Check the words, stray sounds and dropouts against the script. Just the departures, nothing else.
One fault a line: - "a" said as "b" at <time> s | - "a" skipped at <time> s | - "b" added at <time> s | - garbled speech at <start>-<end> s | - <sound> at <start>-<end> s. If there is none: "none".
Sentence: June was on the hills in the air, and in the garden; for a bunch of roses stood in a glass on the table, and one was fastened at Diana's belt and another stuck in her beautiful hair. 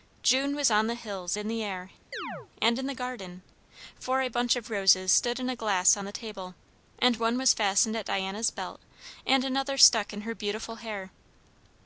- chirp at 2.1-2.5 s